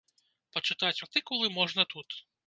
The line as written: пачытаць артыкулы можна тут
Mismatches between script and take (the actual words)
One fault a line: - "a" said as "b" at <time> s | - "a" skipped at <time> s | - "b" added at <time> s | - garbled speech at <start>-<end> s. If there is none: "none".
none